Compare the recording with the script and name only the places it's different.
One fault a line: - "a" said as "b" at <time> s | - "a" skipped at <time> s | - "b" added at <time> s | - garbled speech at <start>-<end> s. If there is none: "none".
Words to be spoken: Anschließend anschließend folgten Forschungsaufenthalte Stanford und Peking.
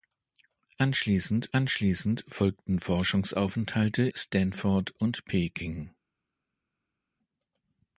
none